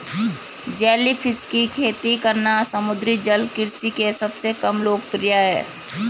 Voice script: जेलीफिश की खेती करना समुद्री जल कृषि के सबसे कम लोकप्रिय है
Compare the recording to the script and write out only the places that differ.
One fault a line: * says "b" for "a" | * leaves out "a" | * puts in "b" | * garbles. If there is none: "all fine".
all fine